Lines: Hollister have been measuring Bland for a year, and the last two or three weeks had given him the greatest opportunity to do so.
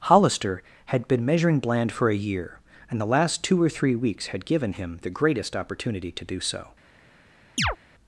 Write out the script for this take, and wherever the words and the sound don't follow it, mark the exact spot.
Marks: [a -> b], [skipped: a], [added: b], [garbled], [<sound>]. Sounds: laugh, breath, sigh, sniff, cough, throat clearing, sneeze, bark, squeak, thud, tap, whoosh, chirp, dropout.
Hollister [have -> had] been measuring Bland for a year, and the last two or three weeks had given him the greatest opportunity to do so. [chirp]